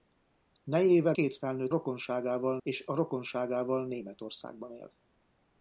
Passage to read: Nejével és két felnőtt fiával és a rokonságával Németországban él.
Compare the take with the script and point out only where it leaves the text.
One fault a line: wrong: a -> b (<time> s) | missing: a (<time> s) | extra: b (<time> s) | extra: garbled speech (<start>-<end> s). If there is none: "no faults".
missing: és (1.2 s)
wrong: fiával -> rokonságával (1.7 s)